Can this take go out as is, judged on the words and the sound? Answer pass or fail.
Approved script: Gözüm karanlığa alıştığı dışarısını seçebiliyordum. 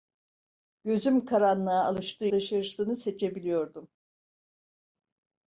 pass